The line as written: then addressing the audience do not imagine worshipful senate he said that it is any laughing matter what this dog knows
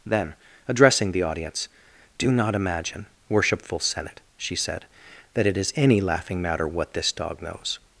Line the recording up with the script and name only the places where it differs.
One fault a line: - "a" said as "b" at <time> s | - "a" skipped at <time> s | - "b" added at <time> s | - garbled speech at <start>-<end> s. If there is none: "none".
- "he" said as "she" at 4.4 s